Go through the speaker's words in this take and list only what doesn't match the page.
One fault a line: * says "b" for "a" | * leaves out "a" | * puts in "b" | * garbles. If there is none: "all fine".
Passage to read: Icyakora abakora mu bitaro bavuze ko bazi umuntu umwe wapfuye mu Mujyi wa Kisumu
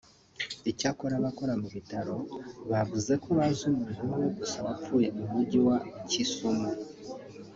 * puts in "gusa"